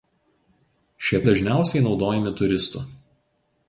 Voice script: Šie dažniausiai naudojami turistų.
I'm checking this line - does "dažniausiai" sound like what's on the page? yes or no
yes